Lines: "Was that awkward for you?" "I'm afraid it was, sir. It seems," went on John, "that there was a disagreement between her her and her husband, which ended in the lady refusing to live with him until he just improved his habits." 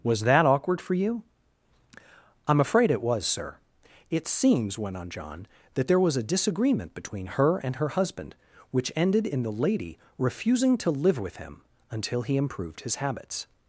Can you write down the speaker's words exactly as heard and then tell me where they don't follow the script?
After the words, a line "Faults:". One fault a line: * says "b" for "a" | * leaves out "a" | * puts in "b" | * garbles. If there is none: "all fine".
"Was that awkward for you?" "I'm afraid it was, sir. It seems," went on John, "that there was a disagreement between her and her husband, which ended in the lady refusing to live with him until he improved his habits."
Faults:
* leaves out "her"
* leaves out "just"